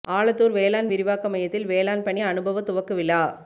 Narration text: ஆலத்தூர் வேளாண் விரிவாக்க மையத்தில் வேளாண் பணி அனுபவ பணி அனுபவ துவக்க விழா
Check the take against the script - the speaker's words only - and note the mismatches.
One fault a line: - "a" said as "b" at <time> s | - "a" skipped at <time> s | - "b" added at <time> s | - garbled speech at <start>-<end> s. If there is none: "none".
- "பணி அனுபவ" skipped at 2.6 s